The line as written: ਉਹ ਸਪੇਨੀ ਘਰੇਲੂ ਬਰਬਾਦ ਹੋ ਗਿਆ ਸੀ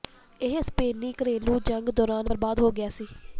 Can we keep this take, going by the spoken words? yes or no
no